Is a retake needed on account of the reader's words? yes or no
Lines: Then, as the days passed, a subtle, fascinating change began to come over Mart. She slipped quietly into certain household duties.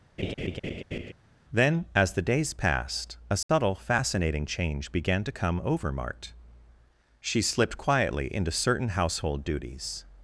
no